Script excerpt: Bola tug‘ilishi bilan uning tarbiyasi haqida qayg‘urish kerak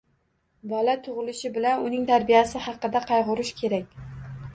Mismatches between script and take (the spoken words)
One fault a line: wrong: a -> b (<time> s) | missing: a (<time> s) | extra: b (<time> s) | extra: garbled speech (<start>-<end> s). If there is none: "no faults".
no faults